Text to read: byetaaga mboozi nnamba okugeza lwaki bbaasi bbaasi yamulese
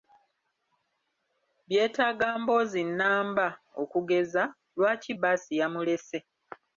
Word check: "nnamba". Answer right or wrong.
right